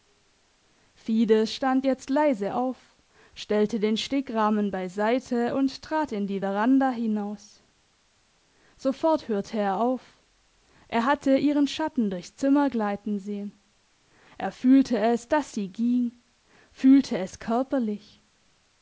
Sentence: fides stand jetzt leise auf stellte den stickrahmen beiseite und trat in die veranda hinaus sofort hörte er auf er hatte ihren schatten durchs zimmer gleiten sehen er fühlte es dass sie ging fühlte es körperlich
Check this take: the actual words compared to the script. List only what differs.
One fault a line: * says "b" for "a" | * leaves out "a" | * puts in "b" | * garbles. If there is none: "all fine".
all fine